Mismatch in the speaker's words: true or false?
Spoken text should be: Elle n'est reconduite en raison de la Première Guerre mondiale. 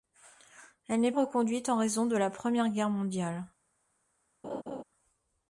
false